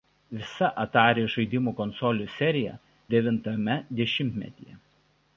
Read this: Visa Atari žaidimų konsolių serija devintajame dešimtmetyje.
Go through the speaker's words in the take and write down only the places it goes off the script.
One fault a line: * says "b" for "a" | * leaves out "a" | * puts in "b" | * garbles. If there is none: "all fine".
all fine